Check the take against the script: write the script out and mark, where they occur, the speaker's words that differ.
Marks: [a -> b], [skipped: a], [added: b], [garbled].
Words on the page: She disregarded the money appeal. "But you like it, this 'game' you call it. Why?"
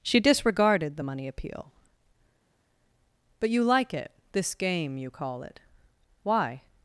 She disregarded the money appeal. "But you like it, this 'game' you call it. Why?"